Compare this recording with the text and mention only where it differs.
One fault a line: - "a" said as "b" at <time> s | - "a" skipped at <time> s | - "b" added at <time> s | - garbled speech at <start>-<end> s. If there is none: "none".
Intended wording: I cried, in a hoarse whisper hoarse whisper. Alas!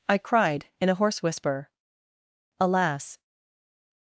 - "hoarse whisper" skipped at 1.7 s